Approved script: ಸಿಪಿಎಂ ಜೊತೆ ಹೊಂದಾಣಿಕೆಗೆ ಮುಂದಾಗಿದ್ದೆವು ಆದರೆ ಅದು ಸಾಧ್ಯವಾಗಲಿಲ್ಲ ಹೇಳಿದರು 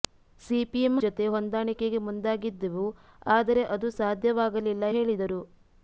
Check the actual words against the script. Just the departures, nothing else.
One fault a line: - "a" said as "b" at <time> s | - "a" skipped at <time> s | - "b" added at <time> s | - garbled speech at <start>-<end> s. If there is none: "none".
none